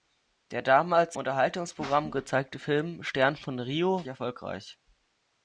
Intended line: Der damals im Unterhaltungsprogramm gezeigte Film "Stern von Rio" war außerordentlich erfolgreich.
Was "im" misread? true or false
true